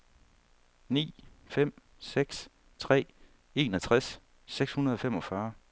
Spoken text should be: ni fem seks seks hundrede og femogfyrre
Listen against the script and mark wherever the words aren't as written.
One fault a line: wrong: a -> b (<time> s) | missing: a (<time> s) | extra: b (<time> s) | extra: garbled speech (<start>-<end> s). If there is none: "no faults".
extra: tre enogtres (2.8 s)